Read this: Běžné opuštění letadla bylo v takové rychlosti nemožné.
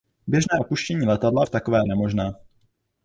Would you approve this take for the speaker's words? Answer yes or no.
no